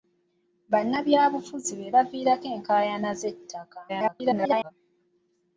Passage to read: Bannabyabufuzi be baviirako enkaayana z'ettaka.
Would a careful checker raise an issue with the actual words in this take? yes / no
yes